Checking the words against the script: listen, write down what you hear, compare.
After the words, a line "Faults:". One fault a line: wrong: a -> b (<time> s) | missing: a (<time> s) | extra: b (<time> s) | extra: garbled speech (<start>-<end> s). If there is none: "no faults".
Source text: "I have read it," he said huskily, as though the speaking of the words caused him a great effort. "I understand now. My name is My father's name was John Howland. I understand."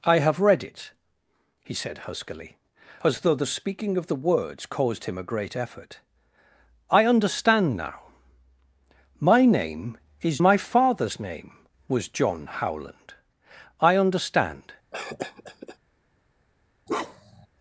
"I have read it," he said huskily, as though the speaking of the words caused him a great effort. "I understand now. My name is My father's name was John Howland. I understand."
Faults:
no faults